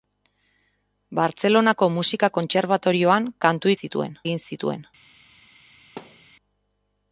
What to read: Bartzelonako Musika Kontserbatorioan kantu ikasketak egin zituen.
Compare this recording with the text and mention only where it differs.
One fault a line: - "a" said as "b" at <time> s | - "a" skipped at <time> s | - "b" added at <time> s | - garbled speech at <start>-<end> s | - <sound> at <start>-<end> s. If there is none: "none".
- "ikasketak" said as "zituen" at 3.8 s
- thud at 6.0-6.3 s